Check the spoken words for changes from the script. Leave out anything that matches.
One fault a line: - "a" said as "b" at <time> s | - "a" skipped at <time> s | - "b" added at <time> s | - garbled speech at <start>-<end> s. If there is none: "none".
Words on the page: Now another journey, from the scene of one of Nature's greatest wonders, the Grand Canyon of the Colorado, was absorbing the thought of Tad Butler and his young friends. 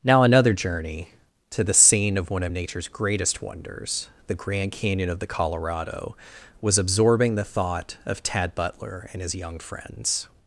- "from" said as "to" at 1.5 s